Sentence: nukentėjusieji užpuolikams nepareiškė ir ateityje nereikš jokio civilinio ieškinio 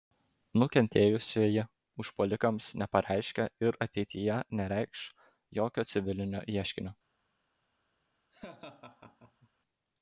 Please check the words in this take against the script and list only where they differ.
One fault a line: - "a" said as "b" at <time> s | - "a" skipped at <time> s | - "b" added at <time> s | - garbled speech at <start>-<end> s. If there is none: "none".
none